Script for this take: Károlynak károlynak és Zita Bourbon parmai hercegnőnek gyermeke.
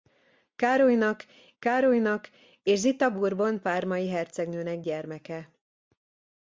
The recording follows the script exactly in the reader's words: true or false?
true